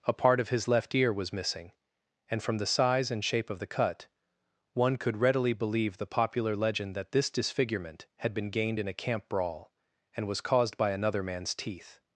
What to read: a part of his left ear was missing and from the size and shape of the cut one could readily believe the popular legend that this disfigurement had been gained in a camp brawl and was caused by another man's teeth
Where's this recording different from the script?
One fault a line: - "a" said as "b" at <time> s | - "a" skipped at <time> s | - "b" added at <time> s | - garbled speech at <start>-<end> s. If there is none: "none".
none